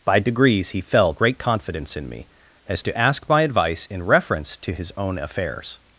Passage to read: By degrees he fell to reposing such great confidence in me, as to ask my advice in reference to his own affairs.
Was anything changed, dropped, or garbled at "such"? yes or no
yes